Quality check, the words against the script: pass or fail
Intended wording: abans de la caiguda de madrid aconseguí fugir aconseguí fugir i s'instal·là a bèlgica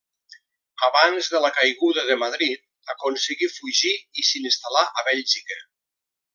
fail